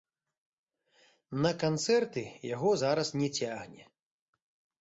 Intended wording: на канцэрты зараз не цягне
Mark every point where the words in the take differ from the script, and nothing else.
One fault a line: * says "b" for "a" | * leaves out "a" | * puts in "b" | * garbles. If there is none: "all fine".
* puts in "яго"